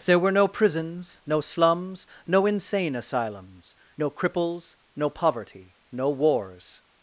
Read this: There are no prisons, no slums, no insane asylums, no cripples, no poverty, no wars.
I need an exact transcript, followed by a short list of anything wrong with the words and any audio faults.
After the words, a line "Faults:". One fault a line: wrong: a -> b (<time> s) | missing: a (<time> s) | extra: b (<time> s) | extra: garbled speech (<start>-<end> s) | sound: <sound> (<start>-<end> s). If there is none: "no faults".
There were no prisons, no slums, no insane asylums, no cripples, no poverty, no wars.
Faults:
wrong: are -> were (0.2 s)